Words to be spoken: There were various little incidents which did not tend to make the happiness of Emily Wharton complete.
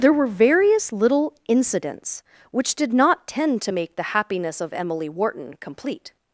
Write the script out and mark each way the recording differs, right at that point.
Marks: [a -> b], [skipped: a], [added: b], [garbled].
There were various little incidents which did not tend to make the happiness of Emily Wharton complete.